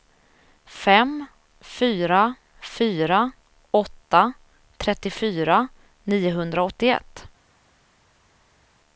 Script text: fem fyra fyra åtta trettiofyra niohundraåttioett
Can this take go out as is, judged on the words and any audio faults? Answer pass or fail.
pass